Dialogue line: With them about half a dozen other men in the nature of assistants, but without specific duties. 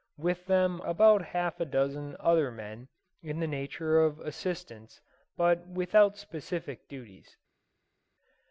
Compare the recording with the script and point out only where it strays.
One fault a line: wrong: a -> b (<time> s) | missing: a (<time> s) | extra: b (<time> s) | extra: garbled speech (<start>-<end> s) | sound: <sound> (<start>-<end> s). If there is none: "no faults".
no faults